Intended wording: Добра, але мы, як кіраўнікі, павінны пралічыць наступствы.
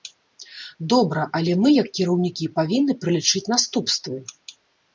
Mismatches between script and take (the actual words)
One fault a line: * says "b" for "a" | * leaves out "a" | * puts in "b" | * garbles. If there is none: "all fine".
all fine